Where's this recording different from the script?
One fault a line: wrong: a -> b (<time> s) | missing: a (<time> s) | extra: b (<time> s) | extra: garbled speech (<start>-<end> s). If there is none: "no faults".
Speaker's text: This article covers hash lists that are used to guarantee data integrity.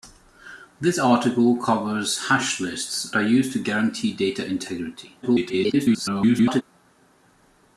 missing: that (3.1 s)
extra: garbled speech (5.2-6.6 s)